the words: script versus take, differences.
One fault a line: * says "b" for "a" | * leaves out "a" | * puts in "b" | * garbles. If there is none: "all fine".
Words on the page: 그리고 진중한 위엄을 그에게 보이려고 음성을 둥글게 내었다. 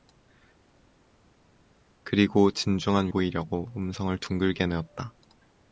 * leaves out "위엄을 그에게"